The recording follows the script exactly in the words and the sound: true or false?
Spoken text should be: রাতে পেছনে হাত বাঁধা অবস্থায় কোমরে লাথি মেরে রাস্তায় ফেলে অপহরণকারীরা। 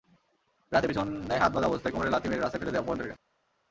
false